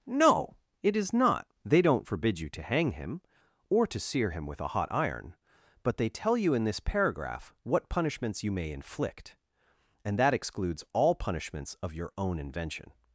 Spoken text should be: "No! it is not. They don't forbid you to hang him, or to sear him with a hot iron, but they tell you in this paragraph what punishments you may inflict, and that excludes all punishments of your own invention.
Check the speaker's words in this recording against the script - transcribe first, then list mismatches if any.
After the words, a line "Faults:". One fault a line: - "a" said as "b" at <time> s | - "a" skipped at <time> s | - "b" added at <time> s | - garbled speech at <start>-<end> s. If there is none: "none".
"No! it is not. They don't forbid you to hang him, or to sear him with a hot iron, but they tell you in this paragraph what punishments you may inflict, and that excludes all punishments of your own invention.
Faults:
none